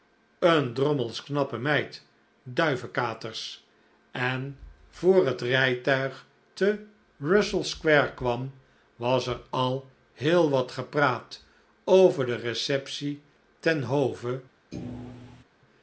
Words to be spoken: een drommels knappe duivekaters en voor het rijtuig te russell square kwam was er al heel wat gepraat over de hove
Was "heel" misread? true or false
false